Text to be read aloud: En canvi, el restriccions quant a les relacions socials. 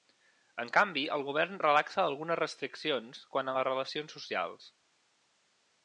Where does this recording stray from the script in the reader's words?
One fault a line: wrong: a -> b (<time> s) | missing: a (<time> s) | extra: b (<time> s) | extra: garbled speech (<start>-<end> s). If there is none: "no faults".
extra: govern relaxa algunes (1.3 s)